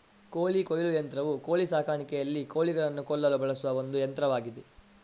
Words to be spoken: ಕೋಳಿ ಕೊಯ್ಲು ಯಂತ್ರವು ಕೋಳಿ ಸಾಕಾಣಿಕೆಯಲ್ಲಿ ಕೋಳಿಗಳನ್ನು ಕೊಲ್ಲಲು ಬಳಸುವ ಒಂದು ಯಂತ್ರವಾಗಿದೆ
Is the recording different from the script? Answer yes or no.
no